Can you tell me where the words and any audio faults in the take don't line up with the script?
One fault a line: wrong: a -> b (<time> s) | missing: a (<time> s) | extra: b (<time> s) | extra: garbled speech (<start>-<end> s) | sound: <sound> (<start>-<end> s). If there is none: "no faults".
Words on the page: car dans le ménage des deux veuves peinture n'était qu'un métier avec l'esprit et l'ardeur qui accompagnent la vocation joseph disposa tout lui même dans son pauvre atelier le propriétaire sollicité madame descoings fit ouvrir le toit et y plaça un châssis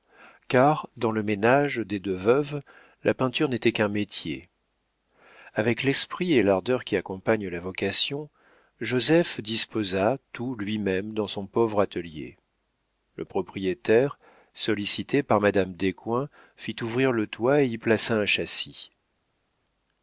extra: la (3.0 s)
extra: par (15.2 s)